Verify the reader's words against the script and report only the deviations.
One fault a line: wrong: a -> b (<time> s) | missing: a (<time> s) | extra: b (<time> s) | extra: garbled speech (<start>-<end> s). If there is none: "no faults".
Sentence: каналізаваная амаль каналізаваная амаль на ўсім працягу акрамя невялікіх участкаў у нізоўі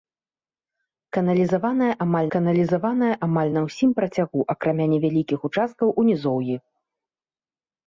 no faults